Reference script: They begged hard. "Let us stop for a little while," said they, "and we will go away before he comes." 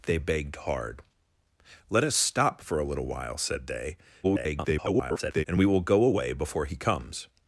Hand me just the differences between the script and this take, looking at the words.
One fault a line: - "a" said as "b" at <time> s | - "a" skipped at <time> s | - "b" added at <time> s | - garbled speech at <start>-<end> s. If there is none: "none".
- garbled speech at 4.2-5.4 s